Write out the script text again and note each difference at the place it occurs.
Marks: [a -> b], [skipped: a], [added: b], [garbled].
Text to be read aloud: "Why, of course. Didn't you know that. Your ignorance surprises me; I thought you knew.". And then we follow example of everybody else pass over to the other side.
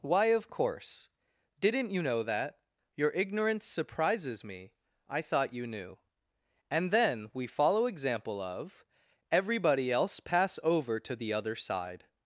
"Why, of course. Didn't you know that. Your ignorance surprises me; I thought you knew.". And then we follow example of everybody else pass over to the other side.